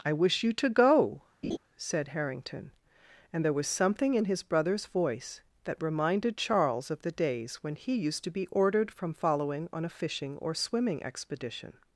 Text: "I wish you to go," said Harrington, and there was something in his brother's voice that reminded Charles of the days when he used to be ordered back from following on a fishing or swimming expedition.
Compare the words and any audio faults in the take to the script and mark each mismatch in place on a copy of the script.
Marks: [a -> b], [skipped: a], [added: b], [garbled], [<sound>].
"I wish you to go," [laugh] said Harrington, and there was something in his brother's voice that reminded Charles of the days when he used to be ordered [skipped: back] from following on a fishing or swimming expedition.